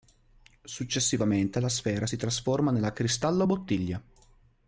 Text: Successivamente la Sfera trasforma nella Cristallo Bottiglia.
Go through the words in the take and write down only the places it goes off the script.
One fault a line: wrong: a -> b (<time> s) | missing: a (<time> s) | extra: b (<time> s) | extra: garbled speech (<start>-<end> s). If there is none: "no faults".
extra: si (2.0 s)